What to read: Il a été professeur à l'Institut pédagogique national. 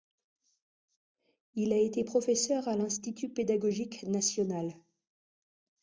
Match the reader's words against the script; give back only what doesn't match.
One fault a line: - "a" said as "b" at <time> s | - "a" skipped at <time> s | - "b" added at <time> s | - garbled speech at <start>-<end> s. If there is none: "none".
none